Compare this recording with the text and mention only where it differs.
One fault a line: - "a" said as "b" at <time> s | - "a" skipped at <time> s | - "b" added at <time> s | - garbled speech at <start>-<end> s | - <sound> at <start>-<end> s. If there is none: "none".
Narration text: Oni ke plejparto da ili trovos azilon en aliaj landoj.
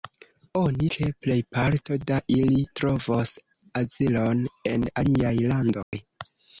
- dropout at 5.8-5.9 s